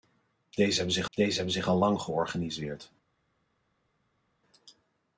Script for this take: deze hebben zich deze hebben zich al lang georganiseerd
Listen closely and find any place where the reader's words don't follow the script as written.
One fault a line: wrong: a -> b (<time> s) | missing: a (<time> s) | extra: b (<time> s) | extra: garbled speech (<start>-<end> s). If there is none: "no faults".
no faults